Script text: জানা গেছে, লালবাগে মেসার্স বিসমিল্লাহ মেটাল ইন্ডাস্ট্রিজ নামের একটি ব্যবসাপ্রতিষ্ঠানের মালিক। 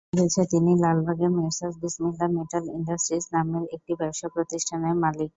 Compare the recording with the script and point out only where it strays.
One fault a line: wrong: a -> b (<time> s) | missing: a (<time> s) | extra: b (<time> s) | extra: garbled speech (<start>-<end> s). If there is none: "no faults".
extra: তিনি (0.5 s)